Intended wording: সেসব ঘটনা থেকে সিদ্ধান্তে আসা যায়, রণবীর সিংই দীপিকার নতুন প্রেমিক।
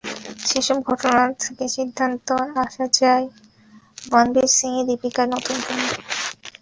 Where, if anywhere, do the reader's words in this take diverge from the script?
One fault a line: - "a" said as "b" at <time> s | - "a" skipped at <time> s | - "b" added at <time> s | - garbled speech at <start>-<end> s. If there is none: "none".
none